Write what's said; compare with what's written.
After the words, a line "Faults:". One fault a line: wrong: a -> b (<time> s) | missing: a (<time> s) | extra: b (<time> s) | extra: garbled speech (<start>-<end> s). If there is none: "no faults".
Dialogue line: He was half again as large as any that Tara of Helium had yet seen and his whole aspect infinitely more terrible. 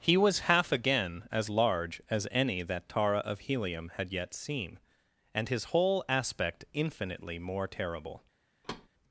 He was half again as large as any that Tara of Helium had yet seen and his whole aspect infinitely more terrible.
Faults:
no faults